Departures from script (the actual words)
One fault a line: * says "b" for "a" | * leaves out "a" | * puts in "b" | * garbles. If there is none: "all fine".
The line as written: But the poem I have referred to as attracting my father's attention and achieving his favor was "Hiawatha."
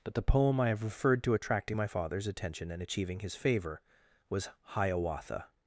* leaves out "as"